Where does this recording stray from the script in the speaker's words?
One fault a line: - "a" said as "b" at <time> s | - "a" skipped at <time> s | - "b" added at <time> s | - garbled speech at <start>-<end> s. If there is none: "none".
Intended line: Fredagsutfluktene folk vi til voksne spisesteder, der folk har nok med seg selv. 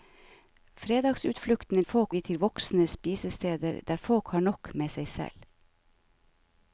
none